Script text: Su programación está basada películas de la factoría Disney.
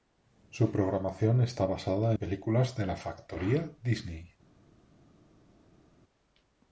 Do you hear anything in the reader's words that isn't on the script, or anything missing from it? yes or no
no